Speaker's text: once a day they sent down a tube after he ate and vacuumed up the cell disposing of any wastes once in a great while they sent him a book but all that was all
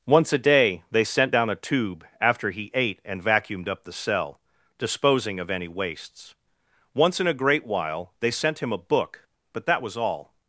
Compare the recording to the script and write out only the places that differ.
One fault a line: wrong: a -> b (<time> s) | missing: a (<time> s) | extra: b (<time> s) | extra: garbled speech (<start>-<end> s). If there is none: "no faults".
missing: all (9.6 s)